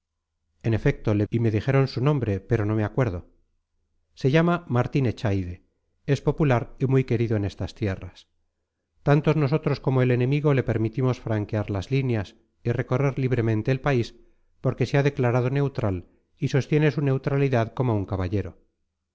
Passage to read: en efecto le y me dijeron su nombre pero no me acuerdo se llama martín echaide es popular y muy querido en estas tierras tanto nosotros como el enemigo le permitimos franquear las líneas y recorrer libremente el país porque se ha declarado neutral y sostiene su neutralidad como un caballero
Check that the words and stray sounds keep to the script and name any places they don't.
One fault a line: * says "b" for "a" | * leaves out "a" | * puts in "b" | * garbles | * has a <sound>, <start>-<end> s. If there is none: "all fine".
all fine